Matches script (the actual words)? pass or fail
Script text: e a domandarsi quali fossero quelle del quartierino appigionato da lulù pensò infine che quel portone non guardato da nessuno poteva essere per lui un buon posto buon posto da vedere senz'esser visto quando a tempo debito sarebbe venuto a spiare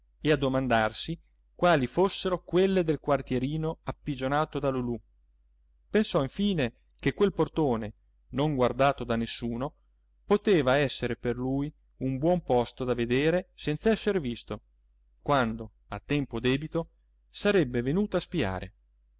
fail